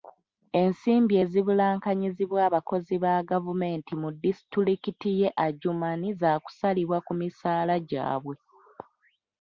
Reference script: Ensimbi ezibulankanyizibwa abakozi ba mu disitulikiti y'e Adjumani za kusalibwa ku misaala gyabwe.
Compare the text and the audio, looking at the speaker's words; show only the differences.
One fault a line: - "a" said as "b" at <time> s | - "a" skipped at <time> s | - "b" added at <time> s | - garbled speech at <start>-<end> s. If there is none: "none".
- "gavumenti" added at 3.3 s